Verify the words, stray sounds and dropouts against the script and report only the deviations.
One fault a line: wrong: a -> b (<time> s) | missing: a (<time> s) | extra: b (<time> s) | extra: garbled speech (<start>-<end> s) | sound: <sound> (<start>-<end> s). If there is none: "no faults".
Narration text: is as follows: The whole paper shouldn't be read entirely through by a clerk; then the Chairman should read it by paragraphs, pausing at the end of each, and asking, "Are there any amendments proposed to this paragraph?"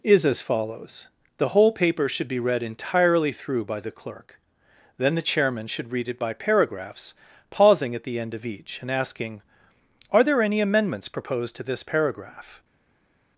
wrong: shouldn't -> should (2.1 s)
wrong: a -> the (3.8 s)